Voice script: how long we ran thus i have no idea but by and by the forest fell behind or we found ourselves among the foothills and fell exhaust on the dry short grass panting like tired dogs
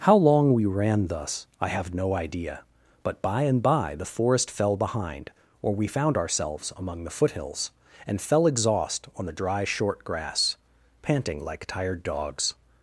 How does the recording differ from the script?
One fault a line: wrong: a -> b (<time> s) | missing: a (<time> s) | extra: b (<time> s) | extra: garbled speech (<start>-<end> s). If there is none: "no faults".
no faults